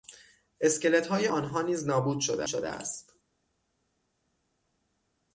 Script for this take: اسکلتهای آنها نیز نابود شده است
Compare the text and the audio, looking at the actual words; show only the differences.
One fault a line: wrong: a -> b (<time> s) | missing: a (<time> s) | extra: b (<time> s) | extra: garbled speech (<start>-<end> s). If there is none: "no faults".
extra: شده (2.5 s)